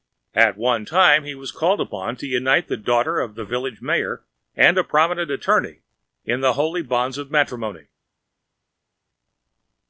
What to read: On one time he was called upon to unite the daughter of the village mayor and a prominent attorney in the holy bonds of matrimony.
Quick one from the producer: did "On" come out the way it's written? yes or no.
no